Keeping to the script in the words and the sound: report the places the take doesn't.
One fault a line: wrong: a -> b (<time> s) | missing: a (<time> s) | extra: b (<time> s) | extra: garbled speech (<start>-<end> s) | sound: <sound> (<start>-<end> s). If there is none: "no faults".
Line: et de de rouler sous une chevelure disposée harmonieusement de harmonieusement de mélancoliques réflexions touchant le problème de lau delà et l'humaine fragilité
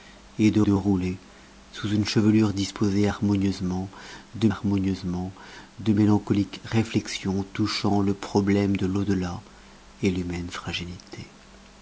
no faults